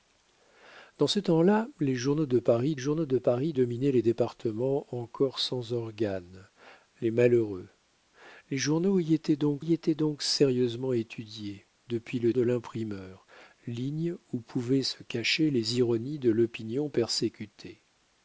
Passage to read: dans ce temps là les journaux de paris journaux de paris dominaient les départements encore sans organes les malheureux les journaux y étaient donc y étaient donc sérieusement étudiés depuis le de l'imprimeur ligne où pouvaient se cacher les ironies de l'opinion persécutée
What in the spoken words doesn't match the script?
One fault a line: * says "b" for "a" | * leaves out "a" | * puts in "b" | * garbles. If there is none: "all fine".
all fine